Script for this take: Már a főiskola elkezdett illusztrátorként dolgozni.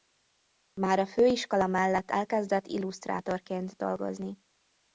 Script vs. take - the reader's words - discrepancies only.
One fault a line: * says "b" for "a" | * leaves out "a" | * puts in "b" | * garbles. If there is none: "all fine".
* puts in "mellett"